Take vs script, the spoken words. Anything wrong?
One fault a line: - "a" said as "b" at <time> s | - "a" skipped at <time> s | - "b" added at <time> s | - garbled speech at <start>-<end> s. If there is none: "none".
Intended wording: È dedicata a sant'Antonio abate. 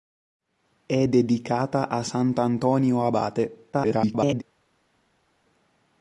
- garbled speech at 3.7-4.4 s